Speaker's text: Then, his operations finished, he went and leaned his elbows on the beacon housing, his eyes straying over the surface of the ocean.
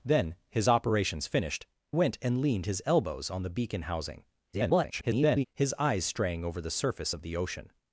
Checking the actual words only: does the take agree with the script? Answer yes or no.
no